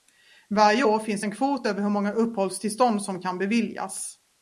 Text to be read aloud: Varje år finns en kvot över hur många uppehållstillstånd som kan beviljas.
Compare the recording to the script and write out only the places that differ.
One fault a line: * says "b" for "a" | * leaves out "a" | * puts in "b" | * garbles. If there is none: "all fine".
all fine